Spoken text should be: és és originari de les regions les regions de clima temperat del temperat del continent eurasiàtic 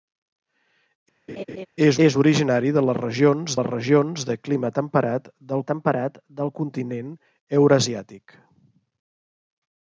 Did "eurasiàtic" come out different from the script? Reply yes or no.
no